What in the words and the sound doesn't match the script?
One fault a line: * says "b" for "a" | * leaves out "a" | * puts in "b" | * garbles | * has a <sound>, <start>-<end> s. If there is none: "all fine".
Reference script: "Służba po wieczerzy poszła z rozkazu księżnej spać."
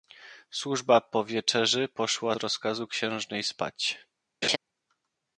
* leaves out "z"
* has a laugh, 4.4-4.6 s